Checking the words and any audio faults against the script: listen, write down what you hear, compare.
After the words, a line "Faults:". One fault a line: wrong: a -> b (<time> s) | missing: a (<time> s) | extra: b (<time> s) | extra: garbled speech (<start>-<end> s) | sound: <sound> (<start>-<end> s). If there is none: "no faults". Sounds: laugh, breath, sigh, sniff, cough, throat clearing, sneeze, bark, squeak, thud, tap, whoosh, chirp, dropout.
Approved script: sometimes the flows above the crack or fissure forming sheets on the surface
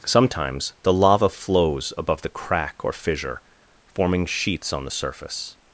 sometimes the lava flows above the crack or fissure forming sheets on the surface
Faults:
extra: lava (0.9 s)